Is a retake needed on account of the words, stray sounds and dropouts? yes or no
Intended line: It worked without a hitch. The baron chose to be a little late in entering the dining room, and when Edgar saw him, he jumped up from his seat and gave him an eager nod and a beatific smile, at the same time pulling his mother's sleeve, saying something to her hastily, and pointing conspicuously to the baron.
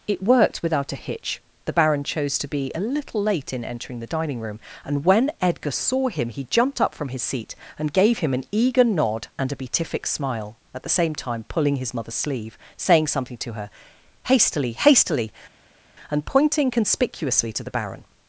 yes